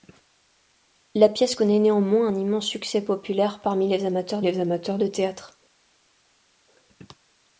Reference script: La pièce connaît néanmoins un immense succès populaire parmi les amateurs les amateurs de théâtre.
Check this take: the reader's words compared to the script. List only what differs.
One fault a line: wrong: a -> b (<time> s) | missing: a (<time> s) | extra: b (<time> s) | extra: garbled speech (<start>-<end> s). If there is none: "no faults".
no faults